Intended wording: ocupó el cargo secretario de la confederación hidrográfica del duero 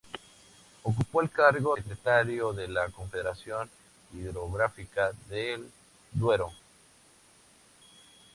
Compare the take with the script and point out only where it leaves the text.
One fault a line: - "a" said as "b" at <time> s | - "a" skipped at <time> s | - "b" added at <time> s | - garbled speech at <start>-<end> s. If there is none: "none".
none